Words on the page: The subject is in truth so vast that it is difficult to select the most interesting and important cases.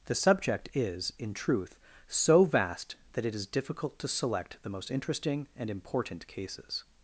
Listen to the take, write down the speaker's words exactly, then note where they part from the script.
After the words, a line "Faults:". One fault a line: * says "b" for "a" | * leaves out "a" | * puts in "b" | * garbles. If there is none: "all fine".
The subject is in truth so vast that it is difficult to select the most interesting and important cases.
Faults:
all fine